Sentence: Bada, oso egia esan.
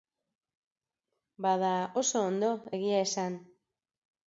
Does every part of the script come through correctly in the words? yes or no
no